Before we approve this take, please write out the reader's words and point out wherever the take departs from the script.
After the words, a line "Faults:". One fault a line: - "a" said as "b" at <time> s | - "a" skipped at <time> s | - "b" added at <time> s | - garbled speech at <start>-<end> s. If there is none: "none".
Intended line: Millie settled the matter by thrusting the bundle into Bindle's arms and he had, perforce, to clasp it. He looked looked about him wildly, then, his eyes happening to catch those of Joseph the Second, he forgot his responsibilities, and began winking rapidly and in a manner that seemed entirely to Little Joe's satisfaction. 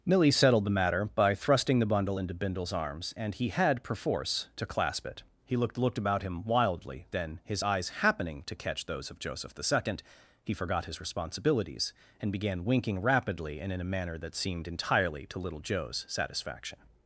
Millie settled the matter by thrusting the bundle into Bindle's arms and he had, perforce, to clasp it. He looked looked about him wildly, then, his eyes happening to catch those of Joseph the Second, he forgot his responsibilities, and began winking rapidly and in a manner that seemed entirely to Little Joe's satisfaction.
Faults:
none